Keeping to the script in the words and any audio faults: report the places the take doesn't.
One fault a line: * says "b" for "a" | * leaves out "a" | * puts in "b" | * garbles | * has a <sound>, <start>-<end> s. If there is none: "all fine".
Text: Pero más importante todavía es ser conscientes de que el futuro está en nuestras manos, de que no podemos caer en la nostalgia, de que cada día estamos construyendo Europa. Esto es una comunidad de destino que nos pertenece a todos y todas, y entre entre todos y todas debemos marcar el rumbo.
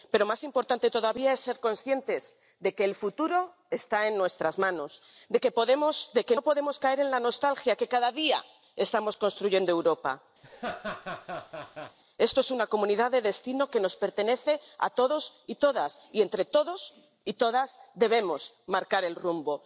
* has a laugh, 10.4-12.0 s
* leaves out "entre"